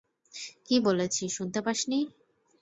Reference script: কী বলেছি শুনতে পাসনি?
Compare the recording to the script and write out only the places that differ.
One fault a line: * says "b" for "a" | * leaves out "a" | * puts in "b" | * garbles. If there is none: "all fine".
all fine